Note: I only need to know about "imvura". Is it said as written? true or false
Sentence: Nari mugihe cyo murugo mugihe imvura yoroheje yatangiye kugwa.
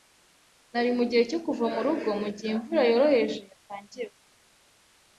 true